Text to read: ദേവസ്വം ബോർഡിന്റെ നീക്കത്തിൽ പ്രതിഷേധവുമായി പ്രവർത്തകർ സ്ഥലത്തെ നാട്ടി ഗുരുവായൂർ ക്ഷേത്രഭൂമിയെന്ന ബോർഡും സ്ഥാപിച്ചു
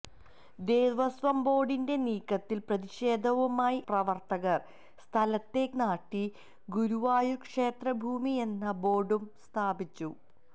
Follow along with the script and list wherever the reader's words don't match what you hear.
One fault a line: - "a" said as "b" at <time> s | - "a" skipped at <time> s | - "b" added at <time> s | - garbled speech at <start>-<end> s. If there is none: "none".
none